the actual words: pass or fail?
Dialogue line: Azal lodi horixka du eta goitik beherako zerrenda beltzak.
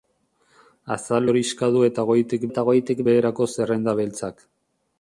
fail